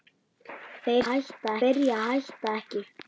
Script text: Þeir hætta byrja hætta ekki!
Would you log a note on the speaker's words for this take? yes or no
no